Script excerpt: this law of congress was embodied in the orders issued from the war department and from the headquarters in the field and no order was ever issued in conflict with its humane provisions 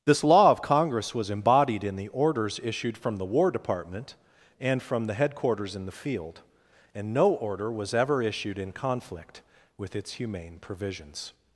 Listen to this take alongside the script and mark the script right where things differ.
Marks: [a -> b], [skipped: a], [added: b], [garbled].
this law of congress was embodied in the orders issued from the war department and from the headquarters in the field and no order was ever issued in conflict with its humane provisions